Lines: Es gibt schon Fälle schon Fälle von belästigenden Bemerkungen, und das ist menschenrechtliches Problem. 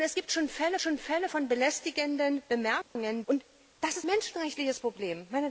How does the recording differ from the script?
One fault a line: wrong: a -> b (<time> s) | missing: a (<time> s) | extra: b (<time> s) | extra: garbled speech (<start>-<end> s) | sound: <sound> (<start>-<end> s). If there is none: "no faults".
sound: dropout (2.8-3.0 s)